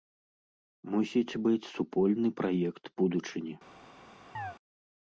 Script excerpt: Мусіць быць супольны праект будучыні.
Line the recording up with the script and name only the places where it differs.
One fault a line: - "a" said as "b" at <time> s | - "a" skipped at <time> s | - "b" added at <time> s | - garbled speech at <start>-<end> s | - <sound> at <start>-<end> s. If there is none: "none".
- chirp at 4.3-4.6 s